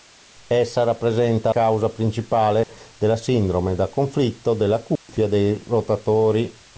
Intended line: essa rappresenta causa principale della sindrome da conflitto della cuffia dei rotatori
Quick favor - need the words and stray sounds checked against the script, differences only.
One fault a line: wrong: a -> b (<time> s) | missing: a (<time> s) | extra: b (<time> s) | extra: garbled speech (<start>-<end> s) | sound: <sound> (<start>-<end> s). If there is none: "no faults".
sound: dropout (2.6-2.7 s)
sound: dropout (5.0-5.1 s)